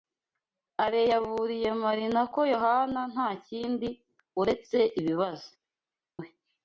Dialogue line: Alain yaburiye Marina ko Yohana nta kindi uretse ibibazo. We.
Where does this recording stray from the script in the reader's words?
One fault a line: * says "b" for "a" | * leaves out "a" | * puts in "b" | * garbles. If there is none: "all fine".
all fine